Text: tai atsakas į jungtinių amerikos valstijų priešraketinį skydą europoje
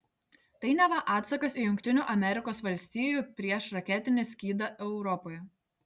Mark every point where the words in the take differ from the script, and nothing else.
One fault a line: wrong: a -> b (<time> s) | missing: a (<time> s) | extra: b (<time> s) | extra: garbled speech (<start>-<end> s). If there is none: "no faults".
extra: neva (0.8 s)